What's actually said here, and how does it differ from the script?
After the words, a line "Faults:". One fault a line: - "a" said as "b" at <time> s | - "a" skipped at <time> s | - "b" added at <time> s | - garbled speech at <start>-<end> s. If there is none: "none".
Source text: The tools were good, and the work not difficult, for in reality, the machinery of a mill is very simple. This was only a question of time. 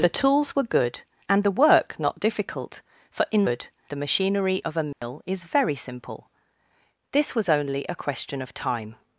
The tools were good, and the work not difficult, for in good, the machinery of a mill is very simple. This was only a question of time.
Faults:
- "reality" said as "good" at 3.4 s